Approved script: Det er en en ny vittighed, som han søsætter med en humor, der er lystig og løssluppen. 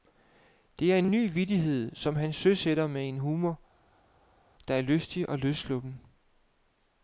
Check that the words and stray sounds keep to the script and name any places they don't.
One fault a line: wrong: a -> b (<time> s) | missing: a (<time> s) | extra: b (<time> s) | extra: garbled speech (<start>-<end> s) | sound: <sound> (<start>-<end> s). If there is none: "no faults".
no faults